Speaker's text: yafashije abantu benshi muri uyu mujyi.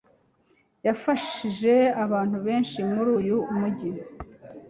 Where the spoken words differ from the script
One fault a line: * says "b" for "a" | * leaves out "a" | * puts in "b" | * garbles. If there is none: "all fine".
all fine